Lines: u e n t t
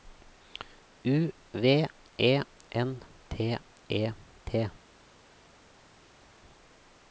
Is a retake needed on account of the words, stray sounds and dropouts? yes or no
yes